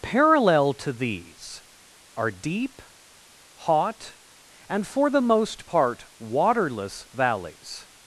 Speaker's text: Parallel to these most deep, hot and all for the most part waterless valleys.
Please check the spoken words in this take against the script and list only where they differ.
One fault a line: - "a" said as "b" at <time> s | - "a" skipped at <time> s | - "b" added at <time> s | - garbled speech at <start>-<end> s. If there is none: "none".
- "most" said as "are" at 2.2 s
- "all" skipped at 4.9 s